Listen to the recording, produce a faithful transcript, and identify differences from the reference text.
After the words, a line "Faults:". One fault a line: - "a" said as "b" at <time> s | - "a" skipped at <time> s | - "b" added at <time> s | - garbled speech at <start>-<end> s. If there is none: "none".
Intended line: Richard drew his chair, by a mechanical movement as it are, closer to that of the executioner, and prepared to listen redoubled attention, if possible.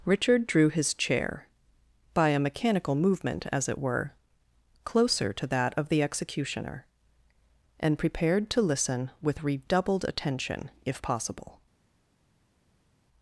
Richard drew his chair, by a mechanical movement as it were, closer to that of the executioner, and prepared to listen with redoubled attention, if possible.
Faults:
- "are" said as "were" at 3.8 s
- "with" added at 9.2 s